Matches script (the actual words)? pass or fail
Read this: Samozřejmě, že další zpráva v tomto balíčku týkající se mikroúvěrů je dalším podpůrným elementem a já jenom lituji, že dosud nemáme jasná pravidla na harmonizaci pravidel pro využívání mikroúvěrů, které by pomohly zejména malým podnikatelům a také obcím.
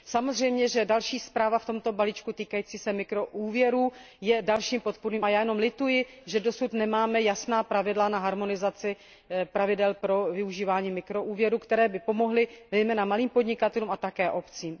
fail